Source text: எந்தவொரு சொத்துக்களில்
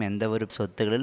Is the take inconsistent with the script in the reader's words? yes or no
no